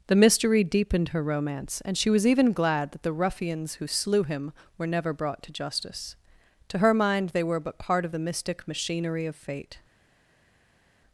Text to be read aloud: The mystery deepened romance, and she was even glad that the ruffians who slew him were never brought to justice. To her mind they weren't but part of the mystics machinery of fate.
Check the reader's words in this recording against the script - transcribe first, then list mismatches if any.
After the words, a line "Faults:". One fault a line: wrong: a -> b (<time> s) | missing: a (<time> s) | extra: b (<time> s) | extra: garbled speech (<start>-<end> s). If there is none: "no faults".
The mystery deepened her romance, and she was even glad that the ruffians who slew him were never brought to justice. To her mind they were but part of the mystic machinery of fate.
Faults:
extra: her (1.1 s)
wrong: weren't -> were (7.4 s)
wrong: mystics -> mystic (8.2 s)